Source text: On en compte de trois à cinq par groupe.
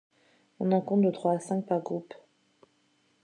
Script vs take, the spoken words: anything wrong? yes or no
no